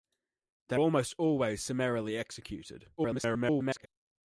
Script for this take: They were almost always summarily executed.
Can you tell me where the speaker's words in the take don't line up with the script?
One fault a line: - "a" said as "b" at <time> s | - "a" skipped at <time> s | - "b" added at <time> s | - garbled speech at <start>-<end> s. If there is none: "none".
- "were" skipped at 0.8 s
- garbled speech at 3.0-3.9 s